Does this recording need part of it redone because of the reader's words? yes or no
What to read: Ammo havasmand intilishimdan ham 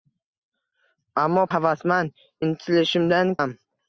no